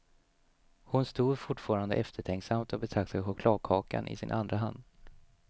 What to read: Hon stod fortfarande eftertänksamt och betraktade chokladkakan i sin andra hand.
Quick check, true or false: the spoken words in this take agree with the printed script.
true